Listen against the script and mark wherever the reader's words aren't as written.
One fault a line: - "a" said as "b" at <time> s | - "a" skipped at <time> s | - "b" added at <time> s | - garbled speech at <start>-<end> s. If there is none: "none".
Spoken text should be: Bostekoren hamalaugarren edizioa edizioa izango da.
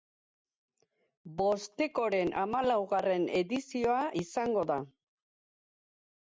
- "edizioa" skipped at 4.0 s